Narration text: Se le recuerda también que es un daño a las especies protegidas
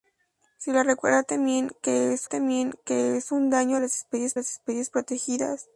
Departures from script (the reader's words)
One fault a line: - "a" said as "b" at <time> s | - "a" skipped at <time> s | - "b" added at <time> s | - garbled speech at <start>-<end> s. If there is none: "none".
- "también que es" added at 2.2 s
- "las especies" added at 4.3 s